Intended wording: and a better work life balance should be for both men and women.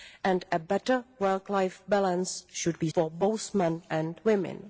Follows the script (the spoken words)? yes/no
yes